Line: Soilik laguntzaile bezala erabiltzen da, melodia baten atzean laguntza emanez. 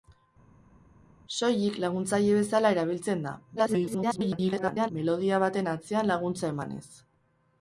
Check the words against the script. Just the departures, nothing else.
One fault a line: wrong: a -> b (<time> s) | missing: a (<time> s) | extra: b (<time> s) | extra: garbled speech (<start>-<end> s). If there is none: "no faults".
extra: garbled speech (3.6-4.9 s)